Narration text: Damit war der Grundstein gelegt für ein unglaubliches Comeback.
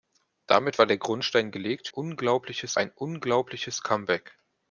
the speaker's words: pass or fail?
fail